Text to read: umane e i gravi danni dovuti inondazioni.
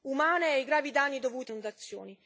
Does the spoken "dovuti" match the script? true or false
true